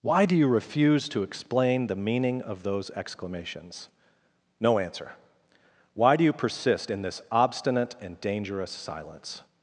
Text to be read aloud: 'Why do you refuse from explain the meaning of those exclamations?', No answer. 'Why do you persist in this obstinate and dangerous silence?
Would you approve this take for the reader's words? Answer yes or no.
no